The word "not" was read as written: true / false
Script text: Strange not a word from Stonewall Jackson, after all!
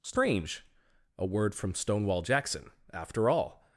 false